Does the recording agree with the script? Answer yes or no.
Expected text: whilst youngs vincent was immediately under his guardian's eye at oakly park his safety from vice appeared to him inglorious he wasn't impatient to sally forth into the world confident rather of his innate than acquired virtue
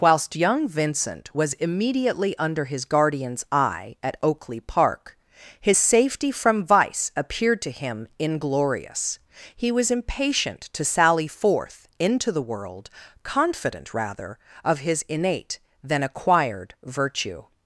no